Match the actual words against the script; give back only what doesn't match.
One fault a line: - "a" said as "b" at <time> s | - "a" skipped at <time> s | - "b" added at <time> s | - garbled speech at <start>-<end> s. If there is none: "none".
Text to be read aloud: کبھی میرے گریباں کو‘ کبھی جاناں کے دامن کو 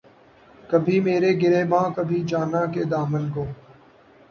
- "کو" skipped at 1.9 s